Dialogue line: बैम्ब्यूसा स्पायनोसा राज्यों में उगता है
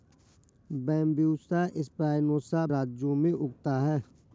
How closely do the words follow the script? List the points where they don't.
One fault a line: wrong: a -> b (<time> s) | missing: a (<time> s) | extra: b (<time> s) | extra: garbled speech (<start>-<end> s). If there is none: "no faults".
no faults